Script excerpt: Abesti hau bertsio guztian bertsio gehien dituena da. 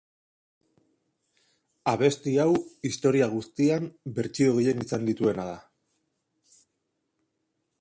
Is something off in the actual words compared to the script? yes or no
yes